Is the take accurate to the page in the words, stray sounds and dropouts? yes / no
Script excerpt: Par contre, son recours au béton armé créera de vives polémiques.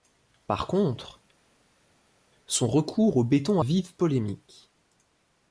no